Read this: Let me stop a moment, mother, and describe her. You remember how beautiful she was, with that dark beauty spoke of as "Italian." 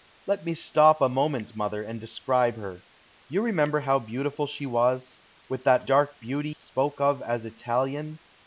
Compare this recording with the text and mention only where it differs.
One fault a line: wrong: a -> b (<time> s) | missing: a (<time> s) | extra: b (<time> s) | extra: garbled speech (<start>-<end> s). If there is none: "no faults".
no faults